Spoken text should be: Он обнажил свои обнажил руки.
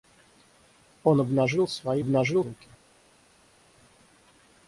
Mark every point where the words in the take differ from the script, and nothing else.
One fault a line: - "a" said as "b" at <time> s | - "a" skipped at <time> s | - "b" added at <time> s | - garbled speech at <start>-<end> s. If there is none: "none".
none